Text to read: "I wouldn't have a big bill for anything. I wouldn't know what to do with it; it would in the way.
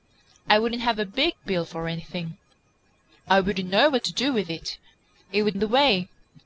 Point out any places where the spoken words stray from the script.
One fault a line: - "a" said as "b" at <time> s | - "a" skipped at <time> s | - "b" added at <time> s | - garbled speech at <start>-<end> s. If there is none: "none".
none